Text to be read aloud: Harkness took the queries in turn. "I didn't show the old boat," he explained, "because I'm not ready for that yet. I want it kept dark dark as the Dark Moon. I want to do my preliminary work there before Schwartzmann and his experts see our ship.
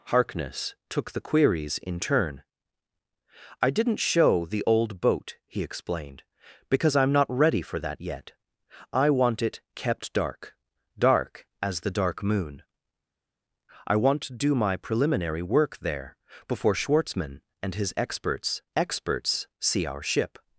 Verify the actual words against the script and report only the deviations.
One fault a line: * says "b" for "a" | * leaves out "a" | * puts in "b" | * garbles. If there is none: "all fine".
* puts in "experts"